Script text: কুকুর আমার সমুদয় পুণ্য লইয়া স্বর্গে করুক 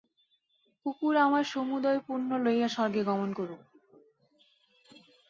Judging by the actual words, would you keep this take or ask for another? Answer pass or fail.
fail